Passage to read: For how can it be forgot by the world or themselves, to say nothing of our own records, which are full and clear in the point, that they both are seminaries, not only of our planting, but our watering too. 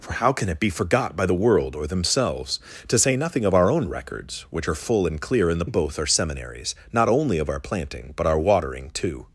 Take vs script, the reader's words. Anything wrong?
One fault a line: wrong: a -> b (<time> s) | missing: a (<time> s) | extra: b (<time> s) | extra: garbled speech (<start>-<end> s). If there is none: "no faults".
missing: point that they (5.7 s)